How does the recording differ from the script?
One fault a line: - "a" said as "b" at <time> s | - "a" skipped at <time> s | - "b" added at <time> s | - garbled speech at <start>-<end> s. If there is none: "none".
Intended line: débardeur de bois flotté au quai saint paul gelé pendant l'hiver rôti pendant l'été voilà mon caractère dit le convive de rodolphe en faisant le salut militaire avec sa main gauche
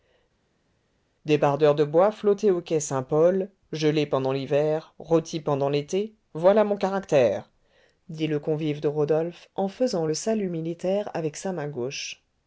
none